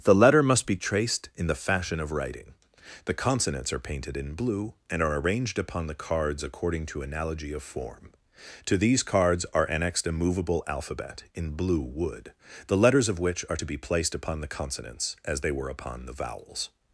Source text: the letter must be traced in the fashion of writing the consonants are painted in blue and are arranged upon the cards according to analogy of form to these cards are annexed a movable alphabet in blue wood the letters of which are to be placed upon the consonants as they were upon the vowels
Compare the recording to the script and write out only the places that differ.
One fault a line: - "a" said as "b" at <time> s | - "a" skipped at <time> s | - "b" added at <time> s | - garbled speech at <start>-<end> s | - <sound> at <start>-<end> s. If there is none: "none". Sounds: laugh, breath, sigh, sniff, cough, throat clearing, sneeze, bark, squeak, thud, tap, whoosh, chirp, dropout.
none